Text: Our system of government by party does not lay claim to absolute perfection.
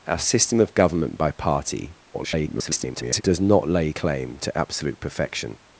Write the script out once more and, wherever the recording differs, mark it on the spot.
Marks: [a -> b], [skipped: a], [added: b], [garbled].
Our system of government by party [garbled] does not lay claim to absolute perfection.